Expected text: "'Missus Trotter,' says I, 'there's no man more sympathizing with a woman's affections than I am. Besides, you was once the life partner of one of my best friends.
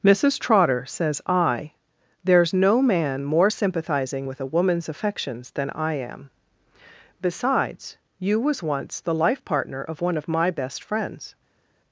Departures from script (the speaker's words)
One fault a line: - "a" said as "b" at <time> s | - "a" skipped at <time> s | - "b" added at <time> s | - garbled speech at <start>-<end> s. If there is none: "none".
none